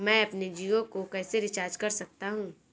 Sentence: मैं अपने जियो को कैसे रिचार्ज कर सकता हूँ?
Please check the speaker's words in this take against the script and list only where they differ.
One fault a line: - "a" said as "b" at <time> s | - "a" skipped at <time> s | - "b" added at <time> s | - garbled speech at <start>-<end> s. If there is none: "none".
none